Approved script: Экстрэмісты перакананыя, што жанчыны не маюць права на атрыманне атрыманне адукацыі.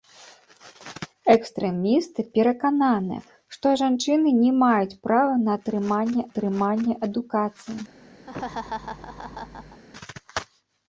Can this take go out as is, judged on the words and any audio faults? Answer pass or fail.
fail